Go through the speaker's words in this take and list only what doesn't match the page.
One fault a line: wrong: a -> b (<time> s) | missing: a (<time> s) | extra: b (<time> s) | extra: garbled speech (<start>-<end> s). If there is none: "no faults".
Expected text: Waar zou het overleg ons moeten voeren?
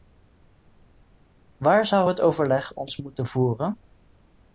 no faults